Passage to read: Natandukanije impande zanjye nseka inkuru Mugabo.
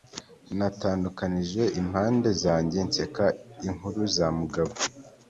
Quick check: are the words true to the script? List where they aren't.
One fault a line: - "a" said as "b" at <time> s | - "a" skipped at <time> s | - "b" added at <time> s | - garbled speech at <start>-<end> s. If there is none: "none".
- "za" added at 4.1 s